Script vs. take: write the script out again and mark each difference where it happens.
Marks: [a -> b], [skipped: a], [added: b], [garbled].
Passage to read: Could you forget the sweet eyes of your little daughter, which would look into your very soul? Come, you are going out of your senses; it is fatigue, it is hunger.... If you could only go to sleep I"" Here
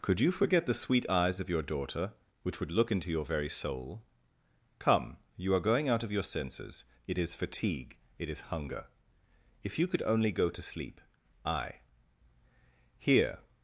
Could you forget the sweet eyes of your [skipped: little] daughter, which would look into your very soul? Come, you are going out of your senses; it is fatigue, it is hunger.... If you could only go to sleep I"" Here